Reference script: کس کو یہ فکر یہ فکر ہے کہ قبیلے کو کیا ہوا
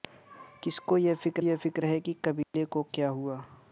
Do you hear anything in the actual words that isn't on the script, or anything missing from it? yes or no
no